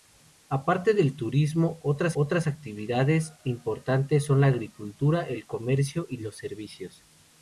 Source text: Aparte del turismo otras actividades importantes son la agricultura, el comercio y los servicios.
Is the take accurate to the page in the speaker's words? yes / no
no